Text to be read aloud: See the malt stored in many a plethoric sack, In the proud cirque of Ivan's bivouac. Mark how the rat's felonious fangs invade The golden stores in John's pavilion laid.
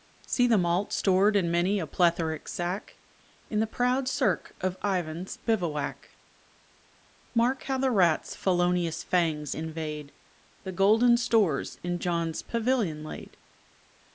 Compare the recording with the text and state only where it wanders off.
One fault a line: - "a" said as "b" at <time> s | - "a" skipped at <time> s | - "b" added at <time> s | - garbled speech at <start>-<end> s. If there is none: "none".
none